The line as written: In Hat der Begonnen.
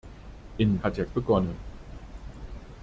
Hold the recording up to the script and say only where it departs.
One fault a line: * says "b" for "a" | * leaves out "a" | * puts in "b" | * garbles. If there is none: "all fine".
all fine